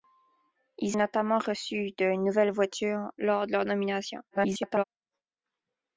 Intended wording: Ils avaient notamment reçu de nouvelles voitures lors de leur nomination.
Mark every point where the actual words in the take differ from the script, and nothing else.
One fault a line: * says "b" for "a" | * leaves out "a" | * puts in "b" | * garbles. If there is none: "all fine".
* leaves out "avaient"
* garbles